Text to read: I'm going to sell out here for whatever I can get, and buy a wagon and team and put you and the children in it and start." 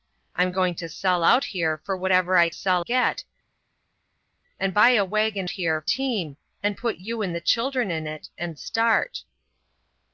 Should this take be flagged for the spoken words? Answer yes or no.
yes